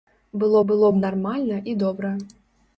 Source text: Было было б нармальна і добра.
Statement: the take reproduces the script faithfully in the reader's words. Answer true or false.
true